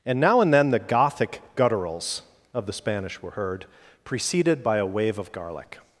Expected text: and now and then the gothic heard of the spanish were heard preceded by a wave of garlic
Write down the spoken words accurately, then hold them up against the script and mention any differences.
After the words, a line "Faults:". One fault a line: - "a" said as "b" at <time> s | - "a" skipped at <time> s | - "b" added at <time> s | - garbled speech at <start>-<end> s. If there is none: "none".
and now and then the gothic gutturals of the spanish were heard preceded by a wave of garlic
Faults:
- "heard" said as "gutturals" at 1.6 s